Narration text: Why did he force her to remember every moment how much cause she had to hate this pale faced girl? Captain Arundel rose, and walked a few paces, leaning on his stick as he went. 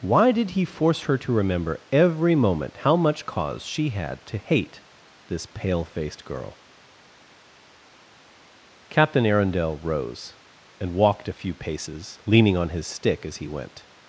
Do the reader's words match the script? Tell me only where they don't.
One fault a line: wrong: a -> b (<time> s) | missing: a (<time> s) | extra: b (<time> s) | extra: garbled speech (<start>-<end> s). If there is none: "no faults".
no faults